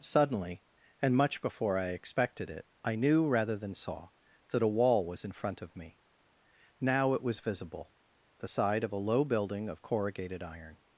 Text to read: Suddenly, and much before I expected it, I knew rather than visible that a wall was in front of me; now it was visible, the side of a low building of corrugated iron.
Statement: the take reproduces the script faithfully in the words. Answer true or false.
false